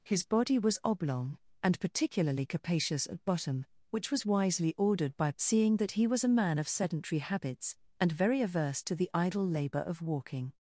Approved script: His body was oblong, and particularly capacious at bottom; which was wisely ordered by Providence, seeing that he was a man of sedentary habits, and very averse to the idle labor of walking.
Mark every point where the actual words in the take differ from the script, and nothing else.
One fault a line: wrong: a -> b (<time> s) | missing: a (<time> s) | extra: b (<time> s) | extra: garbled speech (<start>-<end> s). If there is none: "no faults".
missing: Providence (5.3 s)